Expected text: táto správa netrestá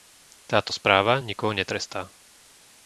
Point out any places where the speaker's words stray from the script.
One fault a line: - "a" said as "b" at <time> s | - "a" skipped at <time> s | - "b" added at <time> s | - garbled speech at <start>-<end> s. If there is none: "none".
- "nikoho" added at 1.2 s